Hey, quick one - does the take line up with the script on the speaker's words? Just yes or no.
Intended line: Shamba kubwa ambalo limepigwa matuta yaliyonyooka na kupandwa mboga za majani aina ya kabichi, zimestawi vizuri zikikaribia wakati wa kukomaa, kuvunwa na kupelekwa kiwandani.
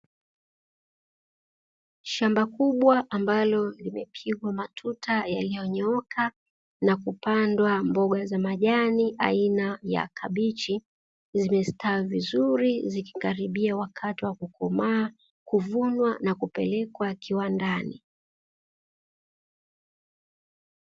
yes